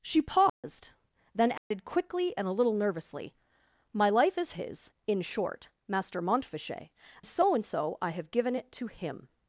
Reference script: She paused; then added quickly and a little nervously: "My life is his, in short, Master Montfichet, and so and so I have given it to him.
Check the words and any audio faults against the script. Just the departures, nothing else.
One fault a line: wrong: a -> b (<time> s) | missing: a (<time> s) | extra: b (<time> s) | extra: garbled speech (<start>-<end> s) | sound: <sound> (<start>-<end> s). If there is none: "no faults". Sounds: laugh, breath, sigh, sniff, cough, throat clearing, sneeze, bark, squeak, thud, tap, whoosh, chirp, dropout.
sound: dropout (0.5-0.6 s)
sound: dropout (1.6-1.7 s)
missing: and (6.9 s)